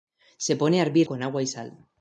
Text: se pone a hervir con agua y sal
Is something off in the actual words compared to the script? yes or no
no